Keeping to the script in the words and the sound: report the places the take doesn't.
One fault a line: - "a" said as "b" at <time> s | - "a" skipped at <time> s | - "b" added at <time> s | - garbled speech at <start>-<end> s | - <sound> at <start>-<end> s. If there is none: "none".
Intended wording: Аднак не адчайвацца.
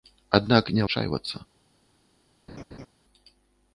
- laugh at 2.5-2.9 s